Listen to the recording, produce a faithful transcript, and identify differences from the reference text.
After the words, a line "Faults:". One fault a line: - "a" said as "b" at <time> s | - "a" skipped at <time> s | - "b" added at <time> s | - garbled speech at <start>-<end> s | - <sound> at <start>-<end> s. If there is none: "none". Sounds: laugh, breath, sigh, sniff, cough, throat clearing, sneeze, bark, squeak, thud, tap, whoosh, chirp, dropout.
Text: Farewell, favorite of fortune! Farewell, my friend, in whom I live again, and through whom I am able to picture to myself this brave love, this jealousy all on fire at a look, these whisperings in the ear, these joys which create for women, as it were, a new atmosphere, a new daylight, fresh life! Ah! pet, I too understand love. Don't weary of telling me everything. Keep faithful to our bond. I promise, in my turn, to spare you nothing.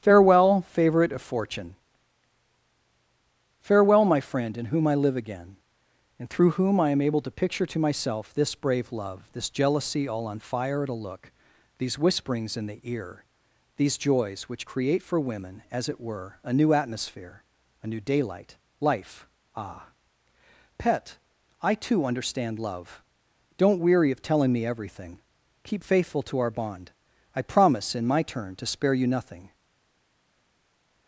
Farewell, favorite of fortune! Farewell, my friend, in whom I live again, and through whom I am able to picture to myself this brave love, this jealousy all on fire at a look, these whisperings in the ear, these joys which create for women, as it were, a new atmosphere, a new daylight, life! Ah! pet, I too understand love. Don't weary of telling me everything. Keep faithful to our bond. I promise, in my turn, to spare you nothing.
Faults:
- "fresh" skipped at 18.5 s